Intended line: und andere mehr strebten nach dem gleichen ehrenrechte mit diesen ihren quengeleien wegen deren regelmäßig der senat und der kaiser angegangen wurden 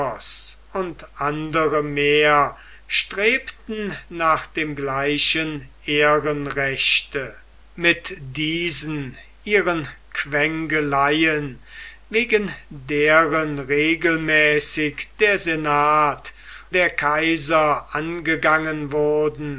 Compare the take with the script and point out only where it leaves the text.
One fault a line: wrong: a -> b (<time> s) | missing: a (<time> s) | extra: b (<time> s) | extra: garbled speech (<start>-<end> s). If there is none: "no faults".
missing: und (16.3 s)